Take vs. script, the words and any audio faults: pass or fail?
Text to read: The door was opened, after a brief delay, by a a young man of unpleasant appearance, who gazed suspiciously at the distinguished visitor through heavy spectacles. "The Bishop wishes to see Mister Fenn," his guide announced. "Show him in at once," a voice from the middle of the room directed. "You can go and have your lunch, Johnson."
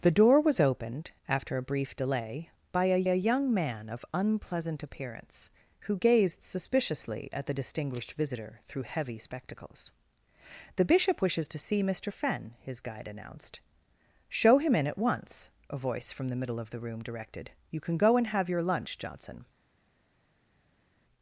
pass